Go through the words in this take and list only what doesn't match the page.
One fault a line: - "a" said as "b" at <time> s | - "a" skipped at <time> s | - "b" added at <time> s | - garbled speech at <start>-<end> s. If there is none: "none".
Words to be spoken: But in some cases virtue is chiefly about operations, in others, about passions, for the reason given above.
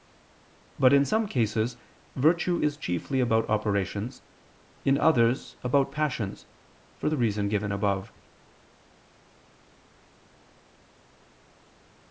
none